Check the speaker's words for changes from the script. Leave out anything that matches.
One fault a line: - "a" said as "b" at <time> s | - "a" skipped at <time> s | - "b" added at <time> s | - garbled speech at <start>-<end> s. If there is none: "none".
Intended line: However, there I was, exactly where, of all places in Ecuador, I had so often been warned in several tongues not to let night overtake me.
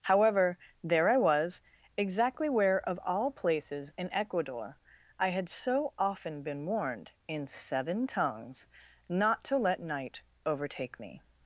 - "several" said as "seven" at 7.5 s